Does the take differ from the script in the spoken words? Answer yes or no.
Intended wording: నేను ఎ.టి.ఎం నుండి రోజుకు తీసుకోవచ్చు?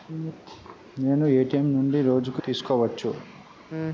no